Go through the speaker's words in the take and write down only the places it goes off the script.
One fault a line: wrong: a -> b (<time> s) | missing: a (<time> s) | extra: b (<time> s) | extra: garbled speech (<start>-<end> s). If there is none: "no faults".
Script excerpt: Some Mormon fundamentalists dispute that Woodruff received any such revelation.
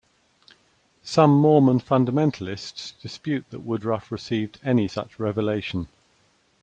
no faults